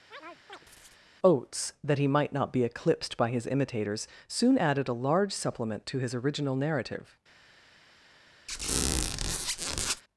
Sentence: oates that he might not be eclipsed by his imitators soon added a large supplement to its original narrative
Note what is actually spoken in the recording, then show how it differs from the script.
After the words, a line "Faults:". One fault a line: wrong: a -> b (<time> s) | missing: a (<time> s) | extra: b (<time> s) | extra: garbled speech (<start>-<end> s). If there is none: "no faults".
oates that he might not be eclipsed by his imitators soon added a large supplement to his original narrative
Faults:
wrong: its -> his (6.0 s)